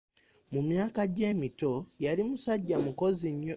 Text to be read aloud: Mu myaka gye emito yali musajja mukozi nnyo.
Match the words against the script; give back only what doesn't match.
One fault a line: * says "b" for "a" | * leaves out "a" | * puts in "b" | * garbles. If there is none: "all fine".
all fine